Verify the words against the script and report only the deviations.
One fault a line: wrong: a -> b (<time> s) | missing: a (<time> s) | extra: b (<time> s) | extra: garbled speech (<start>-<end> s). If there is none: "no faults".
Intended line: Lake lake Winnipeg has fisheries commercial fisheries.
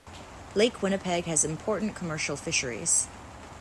missing: lake (0.8 s)
wrong: fisheries -> important (1.4 s)